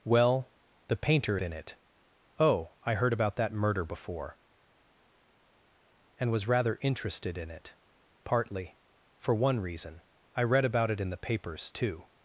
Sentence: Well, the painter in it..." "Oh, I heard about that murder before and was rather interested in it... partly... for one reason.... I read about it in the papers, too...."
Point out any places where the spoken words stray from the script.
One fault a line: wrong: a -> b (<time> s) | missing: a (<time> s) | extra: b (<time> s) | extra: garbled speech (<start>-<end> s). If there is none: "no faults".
no faults